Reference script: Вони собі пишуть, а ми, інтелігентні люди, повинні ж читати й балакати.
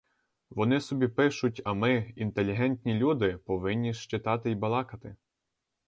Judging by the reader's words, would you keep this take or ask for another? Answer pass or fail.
pass